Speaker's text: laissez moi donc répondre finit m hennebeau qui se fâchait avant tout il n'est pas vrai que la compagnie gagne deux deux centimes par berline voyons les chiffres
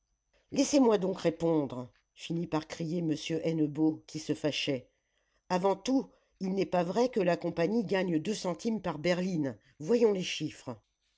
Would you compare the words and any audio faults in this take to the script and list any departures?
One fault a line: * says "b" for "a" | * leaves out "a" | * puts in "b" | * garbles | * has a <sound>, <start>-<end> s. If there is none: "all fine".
* puts in "par crier"
* leaves out "deux"